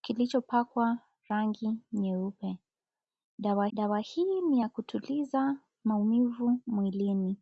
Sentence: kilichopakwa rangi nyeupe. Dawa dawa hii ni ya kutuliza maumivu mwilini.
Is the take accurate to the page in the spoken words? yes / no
yes